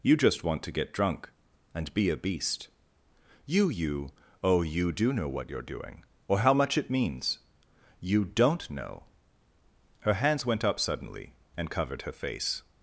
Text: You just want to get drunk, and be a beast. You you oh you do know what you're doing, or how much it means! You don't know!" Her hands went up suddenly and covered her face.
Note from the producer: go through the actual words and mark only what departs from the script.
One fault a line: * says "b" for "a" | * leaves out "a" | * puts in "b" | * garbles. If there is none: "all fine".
all fine